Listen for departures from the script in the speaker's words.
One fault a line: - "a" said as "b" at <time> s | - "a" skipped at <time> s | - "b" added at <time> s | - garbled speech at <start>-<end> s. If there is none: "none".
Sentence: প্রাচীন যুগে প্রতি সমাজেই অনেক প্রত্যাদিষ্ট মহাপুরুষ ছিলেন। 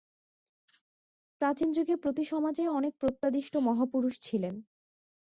none